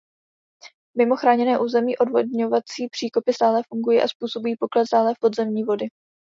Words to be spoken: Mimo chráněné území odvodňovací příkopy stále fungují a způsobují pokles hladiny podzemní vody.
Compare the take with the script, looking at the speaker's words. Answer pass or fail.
fail